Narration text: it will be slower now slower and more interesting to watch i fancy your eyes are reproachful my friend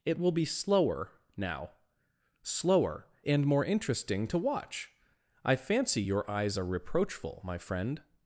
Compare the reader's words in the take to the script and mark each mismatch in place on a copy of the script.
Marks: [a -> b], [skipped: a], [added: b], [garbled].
it will be slower now slower and more interesting to watch i fancy your eyes are reproachful my friend